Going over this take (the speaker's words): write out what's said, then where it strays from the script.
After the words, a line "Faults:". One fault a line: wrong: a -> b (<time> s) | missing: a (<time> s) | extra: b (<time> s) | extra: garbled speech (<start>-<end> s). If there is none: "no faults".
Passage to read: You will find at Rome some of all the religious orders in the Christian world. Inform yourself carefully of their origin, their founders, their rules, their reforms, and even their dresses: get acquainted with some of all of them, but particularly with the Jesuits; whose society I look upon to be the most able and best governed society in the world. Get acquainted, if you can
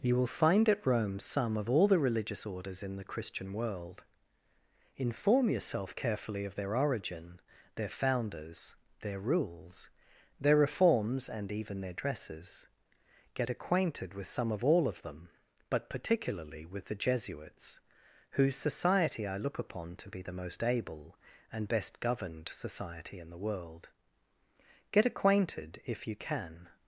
You will find at Rome some of all the religious orders in the Christian world. Inform yourself carefully of their origin, their founders, their rules, their reforms, and even their dresses: get acquainted with some of all of them, but particularly with the Jesuits; whose society I look upon to be the most able and best governed society in the world. Get acquainted, if you can
Faults:
no faults